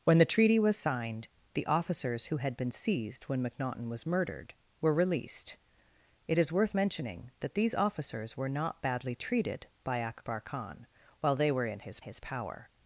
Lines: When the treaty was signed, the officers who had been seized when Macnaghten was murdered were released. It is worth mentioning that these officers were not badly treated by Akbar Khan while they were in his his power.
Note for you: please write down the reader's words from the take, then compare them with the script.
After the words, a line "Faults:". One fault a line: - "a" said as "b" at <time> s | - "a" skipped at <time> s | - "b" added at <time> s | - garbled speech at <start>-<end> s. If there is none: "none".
When the treaty was signed, the officers who had been seized when Macnaghten was murdered were released. It is worth mentioning that these officers were not badly treated by Akbar Khan while they were in his his power.
Faults:
none